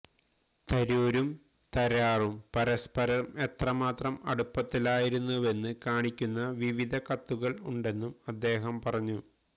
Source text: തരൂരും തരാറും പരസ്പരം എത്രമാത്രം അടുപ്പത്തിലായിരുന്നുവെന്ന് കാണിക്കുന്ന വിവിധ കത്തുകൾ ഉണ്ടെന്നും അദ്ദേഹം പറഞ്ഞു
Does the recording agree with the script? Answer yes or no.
yes